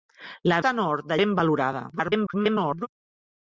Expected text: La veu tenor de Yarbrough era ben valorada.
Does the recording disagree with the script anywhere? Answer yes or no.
yes